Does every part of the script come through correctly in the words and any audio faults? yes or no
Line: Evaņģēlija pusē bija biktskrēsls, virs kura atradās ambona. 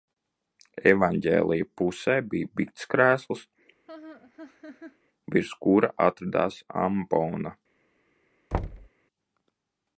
no